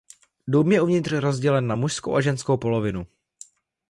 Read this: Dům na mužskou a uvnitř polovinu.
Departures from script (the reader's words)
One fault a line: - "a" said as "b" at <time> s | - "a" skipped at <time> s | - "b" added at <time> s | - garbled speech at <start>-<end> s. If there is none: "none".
- "je uvnitř rozdělen" added at 0.7 s
- "uvnitř" said as "ženskou" at 2.2 s